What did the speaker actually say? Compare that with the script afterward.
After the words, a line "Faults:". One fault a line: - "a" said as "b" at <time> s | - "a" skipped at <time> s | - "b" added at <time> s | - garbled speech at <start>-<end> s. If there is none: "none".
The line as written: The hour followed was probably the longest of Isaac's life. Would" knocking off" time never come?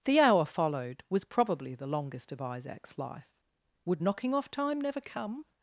The hour followed was probably the longest of Isaac's life. Would" knocking off" time never come?
Faults:
none